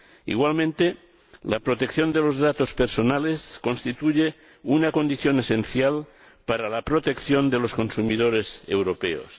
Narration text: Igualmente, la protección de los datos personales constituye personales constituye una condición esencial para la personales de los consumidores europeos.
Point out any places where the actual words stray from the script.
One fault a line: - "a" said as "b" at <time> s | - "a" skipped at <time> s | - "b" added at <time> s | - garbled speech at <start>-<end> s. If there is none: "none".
- "personales constituye" skipped at 4.3 s
- "personales" said as "protección" at 6.8 s